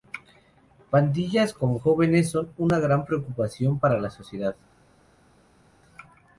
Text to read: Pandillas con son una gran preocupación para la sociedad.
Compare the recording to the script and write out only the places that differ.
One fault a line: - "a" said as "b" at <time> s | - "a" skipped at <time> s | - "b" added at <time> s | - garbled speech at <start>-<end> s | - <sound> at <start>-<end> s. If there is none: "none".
- "jóvenes" added at 1.7 s